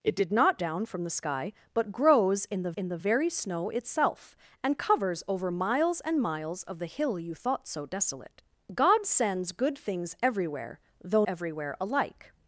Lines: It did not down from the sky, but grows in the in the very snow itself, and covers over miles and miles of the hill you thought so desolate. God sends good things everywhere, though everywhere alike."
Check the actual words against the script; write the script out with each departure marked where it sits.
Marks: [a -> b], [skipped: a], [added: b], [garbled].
It did not down from the sky, but grows in the in the very snow itself, and covers over miles and miles of the hill you thought so desolate. God sends good things everywhere, though everywhere alike."